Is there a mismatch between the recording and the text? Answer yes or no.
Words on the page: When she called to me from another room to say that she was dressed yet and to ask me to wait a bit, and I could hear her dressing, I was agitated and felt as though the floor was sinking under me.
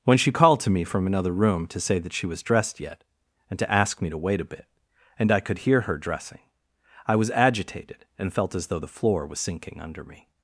no